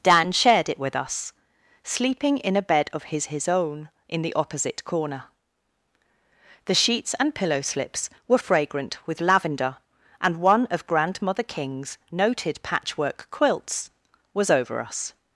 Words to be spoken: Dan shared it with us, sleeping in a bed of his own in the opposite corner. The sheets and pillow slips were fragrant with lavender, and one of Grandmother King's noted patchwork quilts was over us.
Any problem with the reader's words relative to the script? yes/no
yes